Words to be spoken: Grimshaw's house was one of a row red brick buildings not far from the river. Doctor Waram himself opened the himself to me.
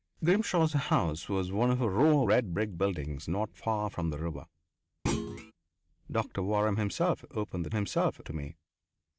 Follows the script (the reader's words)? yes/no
yes